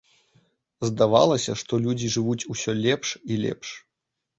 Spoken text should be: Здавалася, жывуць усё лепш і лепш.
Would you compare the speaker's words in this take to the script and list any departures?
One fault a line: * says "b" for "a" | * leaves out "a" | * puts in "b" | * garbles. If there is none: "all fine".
* puts in "што людзі"